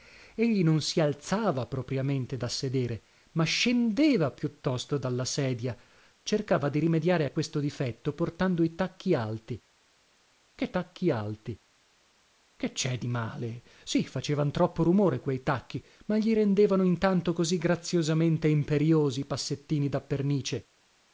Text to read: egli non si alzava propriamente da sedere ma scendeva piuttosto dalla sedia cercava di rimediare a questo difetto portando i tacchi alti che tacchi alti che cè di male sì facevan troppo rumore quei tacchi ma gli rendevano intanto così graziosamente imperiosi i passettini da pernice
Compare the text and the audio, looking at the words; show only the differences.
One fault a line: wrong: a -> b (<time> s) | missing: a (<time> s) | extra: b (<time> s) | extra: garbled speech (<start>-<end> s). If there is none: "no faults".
no faults